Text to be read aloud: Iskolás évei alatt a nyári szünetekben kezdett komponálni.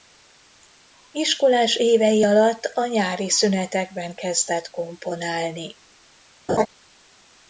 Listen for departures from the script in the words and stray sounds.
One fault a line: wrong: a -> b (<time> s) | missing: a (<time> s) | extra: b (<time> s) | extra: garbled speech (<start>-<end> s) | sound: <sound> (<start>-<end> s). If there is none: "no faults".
sound: laugh (6.5-6.7 s)